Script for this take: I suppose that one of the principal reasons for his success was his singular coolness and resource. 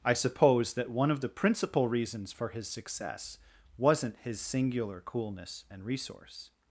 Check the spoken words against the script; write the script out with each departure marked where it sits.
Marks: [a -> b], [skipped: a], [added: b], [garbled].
I suppose that one of the principal reasons for his success [was -> wasn't] his singular coolness and resource.